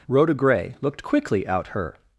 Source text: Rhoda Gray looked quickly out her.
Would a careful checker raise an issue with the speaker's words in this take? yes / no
no